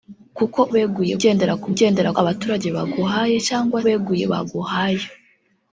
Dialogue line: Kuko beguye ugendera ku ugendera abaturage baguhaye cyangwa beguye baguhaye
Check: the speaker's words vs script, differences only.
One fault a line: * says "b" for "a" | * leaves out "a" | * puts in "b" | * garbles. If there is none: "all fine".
all fine